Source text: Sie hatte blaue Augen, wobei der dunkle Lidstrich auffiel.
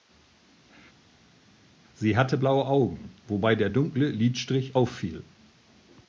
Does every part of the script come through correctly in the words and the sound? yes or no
yes